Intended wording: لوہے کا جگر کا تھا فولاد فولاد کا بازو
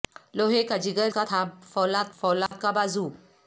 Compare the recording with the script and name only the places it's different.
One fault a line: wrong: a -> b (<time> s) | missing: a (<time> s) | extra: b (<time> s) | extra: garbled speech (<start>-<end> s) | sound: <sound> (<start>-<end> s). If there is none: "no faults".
sound: dropout (2.5-2.5 s)